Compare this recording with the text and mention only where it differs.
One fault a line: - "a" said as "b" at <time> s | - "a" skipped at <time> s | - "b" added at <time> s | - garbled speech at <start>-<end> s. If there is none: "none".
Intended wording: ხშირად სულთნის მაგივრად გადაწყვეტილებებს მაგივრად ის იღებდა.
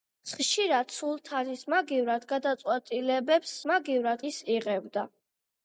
none